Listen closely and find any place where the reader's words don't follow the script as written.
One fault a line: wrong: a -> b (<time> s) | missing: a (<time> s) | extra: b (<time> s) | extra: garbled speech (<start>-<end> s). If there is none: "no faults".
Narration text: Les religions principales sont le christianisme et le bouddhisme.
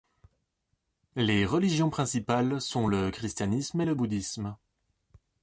no faults